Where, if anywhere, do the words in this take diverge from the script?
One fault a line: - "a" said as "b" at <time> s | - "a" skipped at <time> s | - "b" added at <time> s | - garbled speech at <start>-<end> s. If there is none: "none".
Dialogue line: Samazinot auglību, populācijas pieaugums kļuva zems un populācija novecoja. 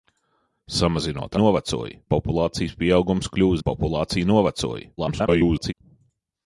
- "auglību" said as "novecoja" at 1.4 s
- "zems" skipped at 3.6 s
- garbled speech at 5.0-5.7 s